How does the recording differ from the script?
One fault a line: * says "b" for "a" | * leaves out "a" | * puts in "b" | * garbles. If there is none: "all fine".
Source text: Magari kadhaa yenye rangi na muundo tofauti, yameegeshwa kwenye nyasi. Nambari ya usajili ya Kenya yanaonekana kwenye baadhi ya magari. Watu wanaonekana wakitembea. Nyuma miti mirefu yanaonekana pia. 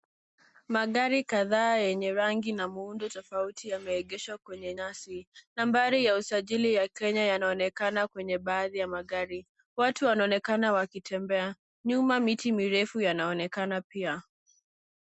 all fine